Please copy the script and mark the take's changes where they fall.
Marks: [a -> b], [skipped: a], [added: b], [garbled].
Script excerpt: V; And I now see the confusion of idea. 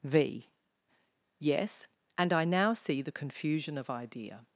V; [added: Yes] And I now see the confusion of idea.